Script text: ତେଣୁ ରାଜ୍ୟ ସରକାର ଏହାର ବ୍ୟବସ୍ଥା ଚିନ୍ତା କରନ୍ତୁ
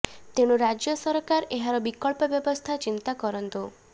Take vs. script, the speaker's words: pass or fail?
fail